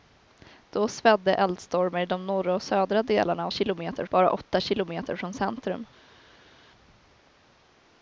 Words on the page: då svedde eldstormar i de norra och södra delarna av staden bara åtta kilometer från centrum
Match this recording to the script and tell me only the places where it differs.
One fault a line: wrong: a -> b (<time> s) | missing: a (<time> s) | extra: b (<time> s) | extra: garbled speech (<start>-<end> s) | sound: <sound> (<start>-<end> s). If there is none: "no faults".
wrong: staden -> kilometer (3.5 s)